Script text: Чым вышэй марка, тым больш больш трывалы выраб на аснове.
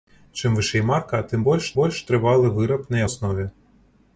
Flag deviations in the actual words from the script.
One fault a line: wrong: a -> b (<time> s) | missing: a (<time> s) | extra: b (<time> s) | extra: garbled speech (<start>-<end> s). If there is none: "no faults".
no faults